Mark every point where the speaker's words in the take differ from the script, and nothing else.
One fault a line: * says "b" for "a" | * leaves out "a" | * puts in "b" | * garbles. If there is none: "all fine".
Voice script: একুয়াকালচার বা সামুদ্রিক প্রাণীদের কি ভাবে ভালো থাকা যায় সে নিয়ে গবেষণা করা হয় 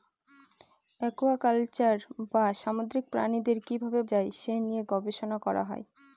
* leaves out "ভালো থাকা"